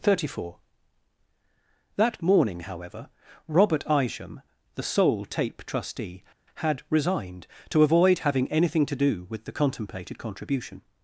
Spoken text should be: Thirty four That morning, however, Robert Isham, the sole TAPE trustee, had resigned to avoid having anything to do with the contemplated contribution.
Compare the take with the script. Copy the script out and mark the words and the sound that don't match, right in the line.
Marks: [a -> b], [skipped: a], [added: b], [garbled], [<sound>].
Thirty four That morning, however, Robert Isham, the sole TAPE trustee, had resigned to avoid having anything to do with the contemplated contribution.